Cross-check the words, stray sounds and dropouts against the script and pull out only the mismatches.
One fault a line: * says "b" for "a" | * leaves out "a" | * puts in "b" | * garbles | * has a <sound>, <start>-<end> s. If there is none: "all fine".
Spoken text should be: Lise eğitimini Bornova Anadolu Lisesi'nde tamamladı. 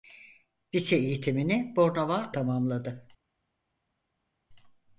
* leaves out "Anadolu Lisesi'nde"